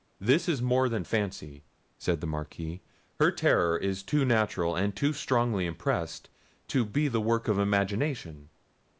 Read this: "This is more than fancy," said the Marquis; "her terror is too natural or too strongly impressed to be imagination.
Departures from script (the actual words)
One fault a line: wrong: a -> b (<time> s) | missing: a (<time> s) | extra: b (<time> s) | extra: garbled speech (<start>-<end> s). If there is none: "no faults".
wrong: or -> and (4.8 s)
extra: the work of (7.1 s)